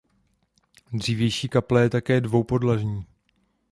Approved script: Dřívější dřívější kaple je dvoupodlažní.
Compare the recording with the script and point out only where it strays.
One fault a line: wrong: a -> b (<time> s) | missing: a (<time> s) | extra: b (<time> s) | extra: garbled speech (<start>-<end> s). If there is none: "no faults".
missing: dřívější (1.5 s)
extra: také (1.9 s)